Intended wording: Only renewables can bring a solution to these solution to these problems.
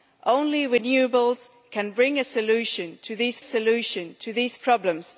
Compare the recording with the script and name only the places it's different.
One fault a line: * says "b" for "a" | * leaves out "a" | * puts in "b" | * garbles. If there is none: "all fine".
all fine